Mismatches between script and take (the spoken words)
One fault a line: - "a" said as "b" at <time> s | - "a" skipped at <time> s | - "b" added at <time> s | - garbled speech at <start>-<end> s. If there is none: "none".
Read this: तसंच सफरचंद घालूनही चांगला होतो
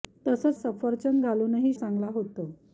none